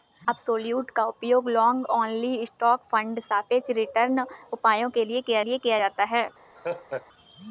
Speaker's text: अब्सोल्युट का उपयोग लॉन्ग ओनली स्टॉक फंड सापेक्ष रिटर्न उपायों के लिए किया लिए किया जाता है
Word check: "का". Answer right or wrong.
right